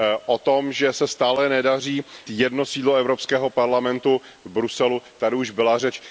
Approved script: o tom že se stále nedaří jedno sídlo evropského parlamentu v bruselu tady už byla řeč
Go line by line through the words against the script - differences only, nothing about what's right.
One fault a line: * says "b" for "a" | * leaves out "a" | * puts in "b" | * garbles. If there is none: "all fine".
all fine